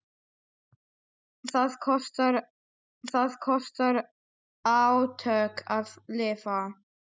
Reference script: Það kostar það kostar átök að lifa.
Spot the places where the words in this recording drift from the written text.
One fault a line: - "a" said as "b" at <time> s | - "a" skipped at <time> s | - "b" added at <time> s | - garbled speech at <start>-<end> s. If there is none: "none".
none